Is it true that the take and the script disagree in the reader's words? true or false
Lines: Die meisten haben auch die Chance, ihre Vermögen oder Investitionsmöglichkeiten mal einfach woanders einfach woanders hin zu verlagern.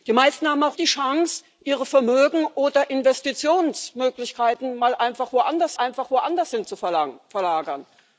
false